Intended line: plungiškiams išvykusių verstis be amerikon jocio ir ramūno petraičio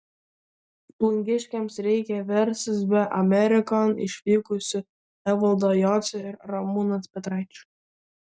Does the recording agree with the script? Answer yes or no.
no